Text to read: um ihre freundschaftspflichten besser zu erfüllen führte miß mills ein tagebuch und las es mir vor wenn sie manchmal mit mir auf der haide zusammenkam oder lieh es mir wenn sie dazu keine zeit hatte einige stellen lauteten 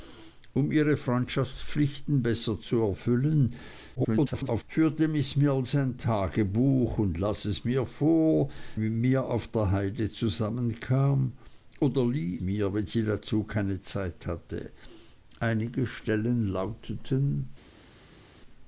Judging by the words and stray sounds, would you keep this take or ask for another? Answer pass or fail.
fail